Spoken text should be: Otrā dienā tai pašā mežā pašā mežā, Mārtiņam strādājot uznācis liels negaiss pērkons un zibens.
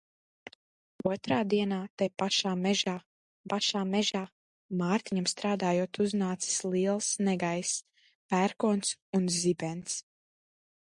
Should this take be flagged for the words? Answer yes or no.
no